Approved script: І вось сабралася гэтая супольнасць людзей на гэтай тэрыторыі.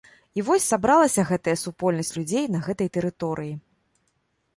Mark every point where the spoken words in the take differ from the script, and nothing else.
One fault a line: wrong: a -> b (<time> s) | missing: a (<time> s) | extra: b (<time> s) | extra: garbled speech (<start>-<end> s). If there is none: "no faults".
no faults